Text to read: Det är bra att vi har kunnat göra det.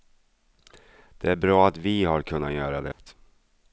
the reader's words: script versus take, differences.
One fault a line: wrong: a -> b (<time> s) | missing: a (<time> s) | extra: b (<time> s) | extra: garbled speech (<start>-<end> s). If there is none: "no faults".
no faults